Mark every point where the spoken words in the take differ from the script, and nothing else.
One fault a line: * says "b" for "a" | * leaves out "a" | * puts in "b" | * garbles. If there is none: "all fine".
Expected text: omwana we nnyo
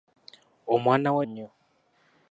all fine